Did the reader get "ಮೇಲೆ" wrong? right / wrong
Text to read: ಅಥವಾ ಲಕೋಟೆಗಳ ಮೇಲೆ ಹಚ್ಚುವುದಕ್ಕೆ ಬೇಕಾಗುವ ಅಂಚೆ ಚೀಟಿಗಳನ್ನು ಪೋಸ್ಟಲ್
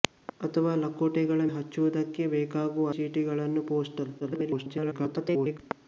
wrong